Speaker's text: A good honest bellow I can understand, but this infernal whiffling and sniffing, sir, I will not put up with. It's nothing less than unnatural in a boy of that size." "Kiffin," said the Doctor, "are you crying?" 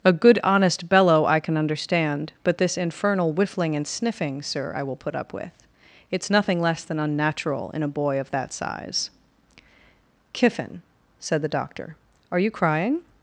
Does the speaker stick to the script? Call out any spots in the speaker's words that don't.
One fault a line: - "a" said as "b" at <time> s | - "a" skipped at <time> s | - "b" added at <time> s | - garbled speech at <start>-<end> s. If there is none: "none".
- "not" skipped at 4.9 s